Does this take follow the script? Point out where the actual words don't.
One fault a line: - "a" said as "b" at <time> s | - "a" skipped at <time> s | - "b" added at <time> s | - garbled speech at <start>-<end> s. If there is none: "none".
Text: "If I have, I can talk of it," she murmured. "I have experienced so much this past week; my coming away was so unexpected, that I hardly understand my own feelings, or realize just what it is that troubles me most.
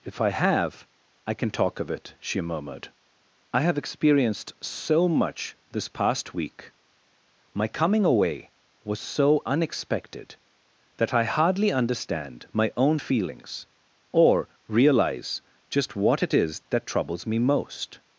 none